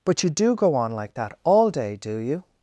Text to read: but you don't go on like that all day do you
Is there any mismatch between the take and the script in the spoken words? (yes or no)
yes